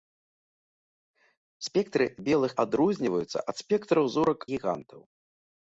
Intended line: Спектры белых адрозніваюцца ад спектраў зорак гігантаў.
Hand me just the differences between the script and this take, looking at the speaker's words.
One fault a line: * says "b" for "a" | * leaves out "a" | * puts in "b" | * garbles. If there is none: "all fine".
all fine